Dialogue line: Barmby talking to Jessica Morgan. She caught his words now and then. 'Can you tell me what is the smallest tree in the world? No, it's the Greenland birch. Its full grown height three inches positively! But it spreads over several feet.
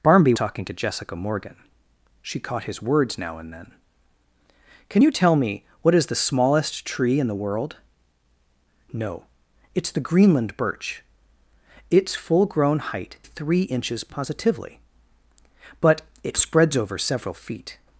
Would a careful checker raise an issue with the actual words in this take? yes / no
no